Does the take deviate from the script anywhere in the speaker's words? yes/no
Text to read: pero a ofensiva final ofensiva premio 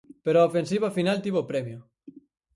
yes